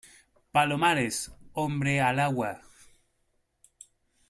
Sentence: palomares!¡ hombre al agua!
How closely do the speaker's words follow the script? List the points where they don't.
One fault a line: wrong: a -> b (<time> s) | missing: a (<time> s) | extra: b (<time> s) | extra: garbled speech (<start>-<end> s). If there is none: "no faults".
no faults